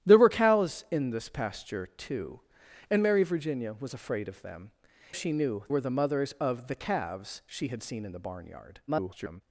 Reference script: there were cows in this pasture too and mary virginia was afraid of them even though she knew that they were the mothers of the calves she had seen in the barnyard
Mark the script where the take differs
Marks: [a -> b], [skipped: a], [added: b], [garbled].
there were cows in this pasture too and mary virginia was afraid of them [skipped: even though] she knew [skipped: that they] were the mothers of the calves she had seen in the barnyard [garbled]